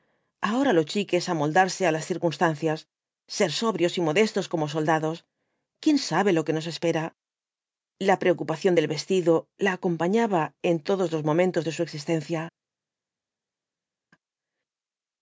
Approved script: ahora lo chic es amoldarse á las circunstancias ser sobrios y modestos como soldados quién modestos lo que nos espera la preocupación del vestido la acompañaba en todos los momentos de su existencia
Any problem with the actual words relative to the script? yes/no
yes